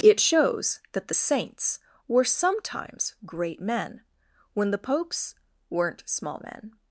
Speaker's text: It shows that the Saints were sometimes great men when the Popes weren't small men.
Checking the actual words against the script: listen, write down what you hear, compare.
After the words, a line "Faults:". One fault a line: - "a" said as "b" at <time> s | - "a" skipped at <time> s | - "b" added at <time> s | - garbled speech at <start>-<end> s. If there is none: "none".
It shows that the Saints were sometimes great men when the Popes weren't small men.
Faults:
none